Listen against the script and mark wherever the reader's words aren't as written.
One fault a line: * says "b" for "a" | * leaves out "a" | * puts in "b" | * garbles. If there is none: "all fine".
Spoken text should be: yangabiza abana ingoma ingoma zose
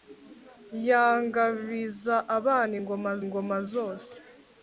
all fine